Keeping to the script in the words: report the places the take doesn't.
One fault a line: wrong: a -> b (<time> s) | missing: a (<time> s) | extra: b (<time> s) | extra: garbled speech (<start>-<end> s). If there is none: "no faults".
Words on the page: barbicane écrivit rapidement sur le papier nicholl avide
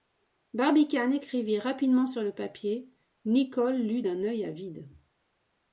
extra: lut d'un œil (3.8 s)